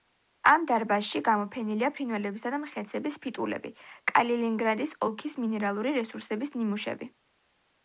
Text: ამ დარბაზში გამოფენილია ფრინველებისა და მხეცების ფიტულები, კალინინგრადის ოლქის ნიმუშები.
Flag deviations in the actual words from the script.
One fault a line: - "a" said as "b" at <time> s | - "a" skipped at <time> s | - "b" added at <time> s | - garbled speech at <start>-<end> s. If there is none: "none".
- "მინერალური რესურსების" added at 5.5 s